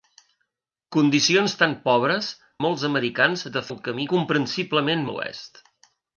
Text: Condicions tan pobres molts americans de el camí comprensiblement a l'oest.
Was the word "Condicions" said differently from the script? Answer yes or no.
no